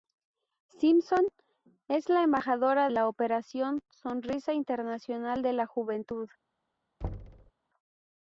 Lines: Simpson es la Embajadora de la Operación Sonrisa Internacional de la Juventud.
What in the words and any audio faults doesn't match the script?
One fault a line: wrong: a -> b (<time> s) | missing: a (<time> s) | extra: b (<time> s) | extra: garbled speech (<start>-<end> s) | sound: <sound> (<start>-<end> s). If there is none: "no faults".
missing: de (2.9 s)
sound: thud (7.0-7.5 s)